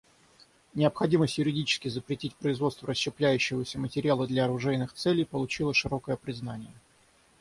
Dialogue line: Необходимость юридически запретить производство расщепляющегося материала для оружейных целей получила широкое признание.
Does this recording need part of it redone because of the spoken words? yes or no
no